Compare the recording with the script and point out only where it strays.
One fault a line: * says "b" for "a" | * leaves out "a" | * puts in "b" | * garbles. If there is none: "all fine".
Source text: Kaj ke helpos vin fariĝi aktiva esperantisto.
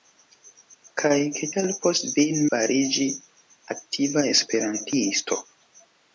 all fine